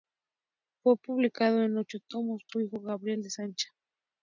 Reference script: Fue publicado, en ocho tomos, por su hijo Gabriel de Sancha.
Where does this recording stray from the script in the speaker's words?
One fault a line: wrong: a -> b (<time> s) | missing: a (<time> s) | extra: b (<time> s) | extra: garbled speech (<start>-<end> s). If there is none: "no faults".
missing: por (2.4 s)